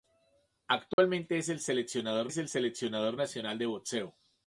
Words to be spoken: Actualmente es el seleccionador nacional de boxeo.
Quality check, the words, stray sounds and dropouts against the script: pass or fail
fail